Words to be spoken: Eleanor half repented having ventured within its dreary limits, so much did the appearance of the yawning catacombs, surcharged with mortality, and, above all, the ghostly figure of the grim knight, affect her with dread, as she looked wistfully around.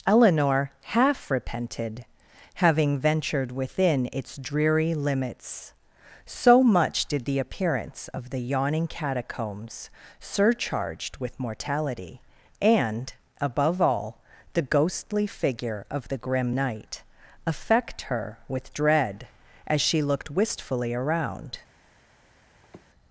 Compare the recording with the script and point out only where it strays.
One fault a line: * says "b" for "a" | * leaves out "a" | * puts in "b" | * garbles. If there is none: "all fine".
all fine